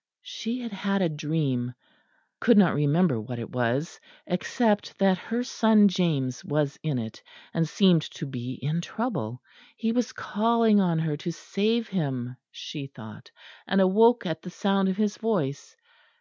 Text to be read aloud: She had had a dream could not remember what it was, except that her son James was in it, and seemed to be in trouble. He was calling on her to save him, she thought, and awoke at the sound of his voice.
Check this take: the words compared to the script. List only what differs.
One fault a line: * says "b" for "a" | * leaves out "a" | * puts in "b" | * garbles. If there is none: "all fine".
all fine